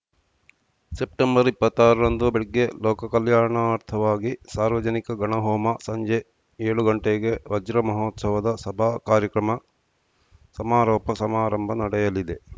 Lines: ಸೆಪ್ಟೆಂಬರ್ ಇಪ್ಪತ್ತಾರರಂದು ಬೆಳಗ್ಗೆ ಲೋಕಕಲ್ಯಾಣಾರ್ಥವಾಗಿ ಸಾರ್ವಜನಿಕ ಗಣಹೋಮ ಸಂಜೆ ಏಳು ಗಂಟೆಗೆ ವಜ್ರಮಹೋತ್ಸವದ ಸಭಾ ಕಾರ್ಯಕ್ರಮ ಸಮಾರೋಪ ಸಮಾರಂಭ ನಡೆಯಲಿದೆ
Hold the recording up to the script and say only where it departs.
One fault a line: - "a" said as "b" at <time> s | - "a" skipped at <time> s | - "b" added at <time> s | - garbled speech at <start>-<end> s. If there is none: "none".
none